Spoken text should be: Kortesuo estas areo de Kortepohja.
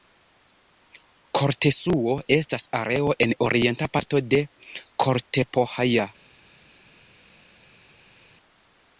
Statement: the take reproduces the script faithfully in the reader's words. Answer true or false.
false